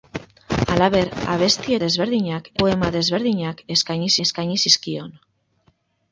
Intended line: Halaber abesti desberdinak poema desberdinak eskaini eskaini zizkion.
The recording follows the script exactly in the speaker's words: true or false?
true